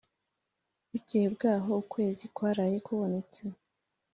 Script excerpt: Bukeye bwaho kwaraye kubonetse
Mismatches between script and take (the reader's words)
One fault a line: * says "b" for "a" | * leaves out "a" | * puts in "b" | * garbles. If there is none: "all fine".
* puts in "ukwezi"